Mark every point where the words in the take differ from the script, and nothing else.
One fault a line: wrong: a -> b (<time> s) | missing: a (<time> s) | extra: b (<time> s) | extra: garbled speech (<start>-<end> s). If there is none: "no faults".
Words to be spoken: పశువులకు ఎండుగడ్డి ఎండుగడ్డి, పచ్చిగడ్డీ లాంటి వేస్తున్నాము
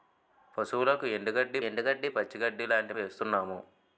no faults